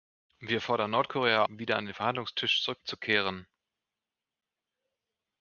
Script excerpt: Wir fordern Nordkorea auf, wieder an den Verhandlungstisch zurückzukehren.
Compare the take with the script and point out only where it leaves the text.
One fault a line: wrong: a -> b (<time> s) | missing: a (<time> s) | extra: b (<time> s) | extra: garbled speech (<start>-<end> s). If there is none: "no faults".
missing: auf (1.4 s)